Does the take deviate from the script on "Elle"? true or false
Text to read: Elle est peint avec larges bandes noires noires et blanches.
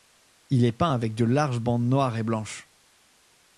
true